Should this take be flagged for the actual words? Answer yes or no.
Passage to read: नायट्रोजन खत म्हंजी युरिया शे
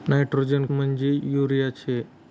yes